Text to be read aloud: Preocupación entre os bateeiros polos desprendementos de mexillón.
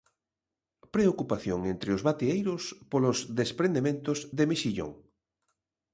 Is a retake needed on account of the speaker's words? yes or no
no